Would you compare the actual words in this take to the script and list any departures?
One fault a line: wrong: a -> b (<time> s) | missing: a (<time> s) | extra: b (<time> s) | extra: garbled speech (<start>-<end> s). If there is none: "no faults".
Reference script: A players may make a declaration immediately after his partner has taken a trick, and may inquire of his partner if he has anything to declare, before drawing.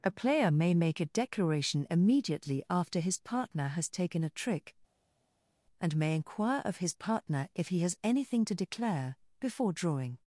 wrong: players -> player (0.1 s)